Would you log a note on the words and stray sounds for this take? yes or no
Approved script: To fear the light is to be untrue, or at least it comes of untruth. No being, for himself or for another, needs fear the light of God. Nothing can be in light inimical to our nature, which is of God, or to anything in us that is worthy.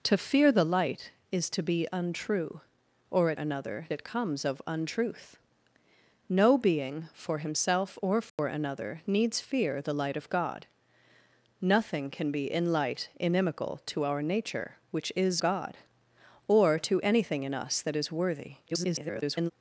yes